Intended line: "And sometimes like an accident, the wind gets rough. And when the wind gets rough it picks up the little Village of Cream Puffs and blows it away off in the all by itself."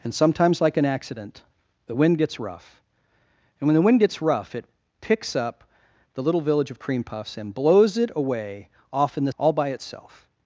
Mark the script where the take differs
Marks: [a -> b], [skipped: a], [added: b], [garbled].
"And sometimes like an accident, the wind gets rough. And when the wind gets rough it picks up the little Village of Cream Puffs and blows it away off in the all by itself."